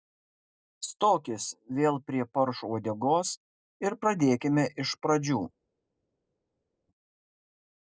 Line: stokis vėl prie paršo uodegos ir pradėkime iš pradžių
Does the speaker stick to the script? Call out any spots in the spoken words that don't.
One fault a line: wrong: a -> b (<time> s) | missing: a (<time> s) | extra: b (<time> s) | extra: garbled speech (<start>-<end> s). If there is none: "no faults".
no faults